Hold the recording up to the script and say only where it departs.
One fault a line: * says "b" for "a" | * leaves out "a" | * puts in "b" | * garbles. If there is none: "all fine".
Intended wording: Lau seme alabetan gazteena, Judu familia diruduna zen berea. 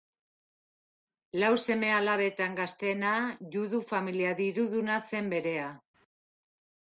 all fine